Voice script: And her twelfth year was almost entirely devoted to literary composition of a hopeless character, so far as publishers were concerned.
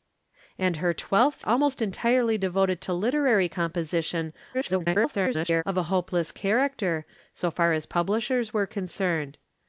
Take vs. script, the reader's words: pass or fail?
fail